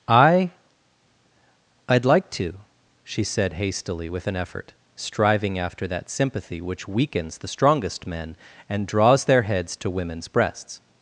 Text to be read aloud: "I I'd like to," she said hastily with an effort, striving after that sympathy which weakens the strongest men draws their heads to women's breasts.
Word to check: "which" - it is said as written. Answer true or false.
true